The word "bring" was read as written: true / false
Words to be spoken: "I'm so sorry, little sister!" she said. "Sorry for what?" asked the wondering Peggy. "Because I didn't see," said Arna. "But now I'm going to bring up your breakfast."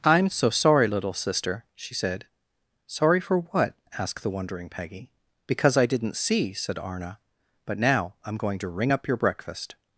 false